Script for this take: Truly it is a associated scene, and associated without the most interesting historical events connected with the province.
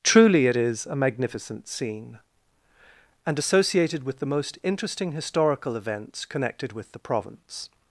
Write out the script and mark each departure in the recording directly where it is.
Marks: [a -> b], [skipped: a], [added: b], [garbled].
Truly it is a [associated -> magnificent] scene, and associated [without -> with] the most interesting historical events connected with the province.